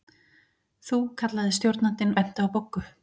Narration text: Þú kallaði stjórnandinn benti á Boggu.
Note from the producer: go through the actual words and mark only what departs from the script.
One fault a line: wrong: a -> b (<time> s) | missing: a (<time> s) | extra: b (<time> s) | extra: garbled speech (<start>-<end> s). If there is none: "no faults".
no faults